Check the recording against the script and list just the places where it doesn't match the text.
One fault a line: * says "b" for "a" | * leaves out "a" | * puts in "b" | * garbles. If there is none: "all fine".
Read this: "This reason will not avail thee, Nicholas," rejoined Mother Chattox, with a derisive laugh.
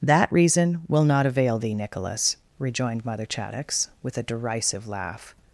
* says "That" for "This"